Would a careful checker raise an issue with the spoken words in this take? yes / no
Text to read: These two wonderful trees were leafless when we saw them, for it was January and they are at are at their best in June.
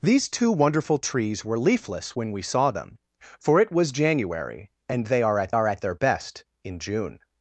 no